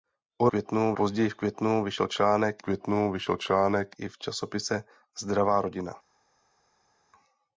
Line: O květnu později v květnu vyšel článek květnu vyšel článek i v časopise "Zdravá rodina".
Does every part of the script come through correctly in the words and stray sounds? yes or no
yes